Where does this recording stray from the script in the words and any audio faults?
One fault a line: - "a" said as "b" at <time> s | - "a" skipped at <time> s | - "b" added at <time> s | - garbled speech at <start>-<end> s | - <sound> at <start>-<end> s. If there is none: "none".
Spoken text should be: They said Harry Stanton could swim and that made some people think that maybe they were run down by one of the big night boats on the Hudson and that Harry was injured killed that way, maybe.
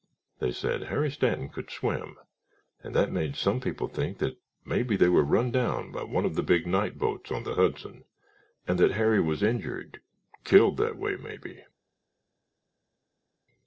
none